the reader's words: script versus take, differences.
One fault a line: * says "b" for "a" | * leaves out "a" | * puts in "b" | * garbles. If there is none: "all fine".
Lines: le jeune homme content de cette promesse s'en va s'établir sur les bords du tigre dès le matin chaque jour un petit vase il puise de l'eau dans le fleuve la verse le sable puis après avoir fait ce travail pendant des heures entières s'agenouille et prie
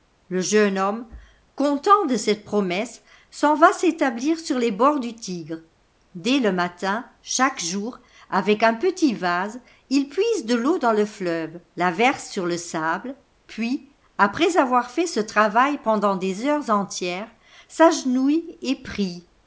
* puts in "avec"
* puts in "sur"